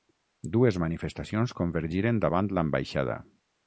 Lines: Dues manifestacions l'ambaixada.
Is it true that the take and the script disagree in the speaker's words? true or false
true